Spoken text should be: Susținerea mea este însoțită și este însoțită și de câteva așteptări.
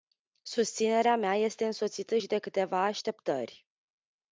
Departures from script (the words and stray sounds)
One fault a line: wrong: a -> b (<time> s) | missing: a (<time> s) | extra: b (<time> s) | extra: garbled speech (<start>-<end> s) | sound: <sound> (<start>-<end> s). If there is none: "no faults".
missing: este însoțită și (2.3 s)